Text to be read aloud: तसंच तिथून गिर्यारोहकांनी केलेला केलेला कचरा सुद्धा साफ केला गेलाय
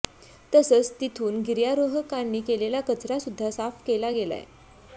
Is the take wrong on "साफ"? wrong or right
right